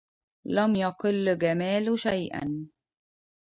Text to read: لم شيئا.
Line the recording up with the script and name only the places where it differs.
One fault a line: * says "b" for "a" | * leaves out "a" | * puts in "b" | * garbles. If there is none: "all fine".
* puts in "يقل جمال"